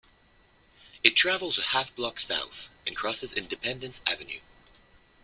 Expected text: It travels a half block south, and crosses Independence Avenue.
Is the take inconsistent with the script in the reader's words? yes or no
no